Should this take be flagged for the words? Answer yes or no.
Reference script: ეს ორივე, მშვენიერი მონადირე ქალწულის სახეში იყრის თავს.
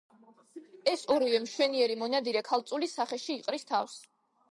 no